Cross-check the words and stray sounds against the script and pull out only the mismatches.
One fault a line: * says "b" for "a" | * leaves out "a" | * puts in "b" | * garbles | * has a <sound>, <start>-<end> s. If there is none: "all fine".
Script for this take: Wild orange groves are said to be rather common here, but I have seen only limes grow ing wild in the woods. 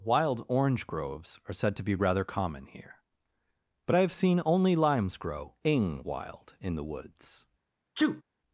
* has a sneeze, 8.0-8.2 s